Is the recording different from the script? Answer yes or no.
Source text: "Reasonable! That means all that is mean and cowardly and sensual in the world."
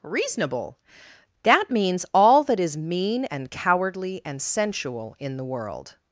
no